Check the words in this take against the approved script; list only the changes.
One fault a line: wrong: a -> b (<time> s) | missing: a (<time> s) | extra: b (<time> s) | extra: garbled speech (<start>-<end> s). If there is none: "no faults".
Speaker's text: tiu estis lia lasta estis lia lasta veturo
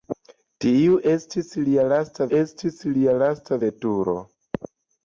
no faults